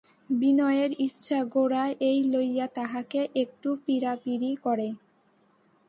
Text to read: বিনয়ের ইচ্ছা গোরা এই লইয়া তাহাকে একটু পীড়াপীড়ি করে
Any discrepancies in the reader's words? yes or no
no